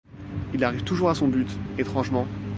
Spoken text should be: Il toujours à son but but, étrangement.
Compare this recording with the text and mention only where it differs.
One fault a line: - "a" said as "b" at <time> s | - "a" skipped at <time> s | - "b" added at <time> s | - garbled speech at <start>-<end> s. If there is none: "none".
- "arrive" added at 0.6 s
- "but" skipped at 1.5 s